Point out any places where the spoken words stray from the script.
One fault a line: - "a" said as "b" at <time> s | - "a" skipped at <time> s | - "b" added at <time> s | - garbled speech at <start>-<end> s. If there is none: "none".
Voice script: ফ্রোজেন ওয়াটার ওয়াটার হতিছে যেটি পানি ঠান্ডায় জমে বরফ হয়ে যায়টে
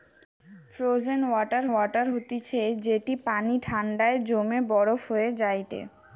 none